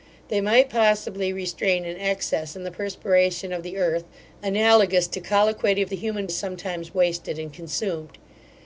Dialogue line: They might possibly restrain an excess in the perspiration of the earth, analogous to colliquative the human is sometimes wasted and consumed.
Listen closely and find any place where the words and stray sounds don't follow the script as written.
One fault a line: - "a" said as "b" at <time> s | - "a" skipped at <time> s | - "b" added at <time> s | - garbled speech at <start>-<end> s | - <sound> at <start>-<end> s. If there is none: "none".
none